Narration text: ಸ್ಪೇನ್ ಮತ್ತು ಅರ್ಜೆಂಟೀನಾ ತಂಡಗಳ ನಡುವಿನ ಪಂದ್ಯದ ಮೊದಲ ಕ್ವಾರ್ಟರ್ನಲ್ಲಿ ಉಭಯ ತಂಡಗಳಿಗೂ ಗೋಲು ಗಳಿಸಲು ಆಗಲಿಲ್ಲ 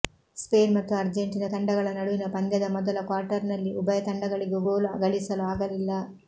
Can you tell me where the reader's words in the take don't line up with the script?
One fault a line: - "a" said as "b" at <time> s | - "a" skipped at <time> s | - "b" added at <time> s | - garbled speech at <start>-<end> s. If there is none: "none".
none